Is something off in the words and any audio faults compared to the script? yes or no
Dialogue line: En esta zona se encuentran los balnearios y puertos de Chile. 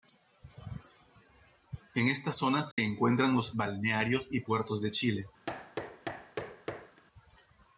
yes